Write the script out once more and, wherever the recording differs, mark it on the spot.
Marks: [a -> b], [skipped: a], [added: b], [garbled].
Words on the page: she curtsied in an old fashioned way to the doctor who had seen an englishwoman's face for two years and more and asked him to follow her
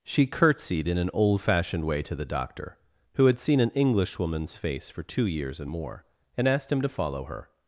she curtsied in an old fashioned way to the doctor who had seen an englishwoman's face for two years and more and asked him to follow her